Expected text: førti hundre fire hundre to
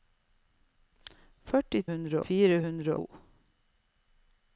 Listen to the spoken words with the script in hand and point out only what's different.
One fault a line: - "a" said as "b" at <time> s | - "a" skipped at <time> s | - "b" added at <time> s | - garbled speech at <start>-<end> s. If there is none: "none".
none